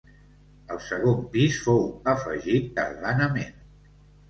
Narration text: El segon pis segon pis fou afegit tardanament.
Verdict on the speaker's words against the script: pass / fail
fail